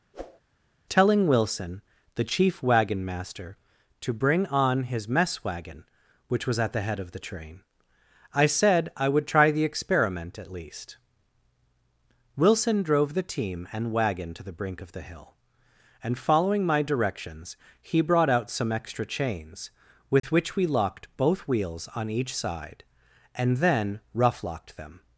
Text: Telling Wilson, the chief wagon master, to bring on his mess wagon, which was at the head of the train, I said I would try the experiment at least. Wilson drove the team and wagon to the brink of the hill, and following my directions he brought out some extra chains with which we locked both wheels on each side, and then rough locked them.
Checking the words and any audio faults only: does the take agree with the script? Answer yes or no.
no